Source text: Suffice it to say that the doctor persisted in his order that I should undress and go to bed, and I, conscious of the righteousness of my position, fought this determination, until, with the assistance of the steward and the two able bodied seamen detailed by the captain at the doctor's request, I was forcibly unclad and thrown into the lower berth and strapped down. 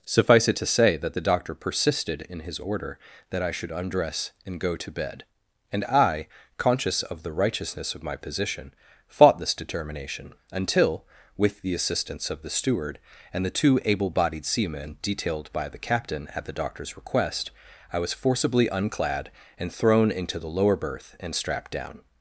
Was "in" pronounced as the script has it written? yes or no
yes